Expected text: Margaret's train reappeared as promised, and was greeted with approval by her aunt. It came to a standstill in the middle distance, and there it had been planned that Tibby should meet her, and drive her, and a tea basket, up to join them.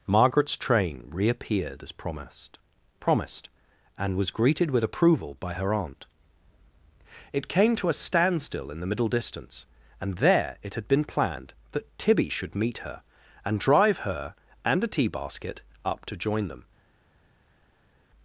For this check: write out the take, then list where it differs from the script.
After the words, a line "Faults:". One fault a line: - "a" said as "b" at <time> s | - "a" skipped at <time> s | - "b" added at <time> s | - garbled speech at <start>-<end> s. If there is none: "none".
Margaret's train reappeared as promised promised, and was greeted with approval by her aunt. It came to a standstill in the middle distance, and there it had been planned that Tibby should meet her, and drive her, and a tea basket, up to join them.
Faults:
- "promised" added at 3.0 s